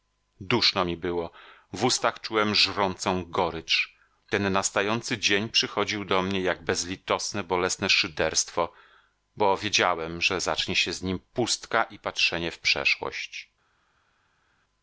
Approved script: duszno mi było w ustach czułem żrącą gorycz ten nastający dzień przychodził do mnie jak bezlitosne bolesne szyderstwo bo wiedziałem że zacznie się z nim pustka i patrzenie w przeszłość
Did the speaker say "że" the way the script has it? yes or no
yes